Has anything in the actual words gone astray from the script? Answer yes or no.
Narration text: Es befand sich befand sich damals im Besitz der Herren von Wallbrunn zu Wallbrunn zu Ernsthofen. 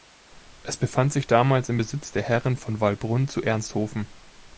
yes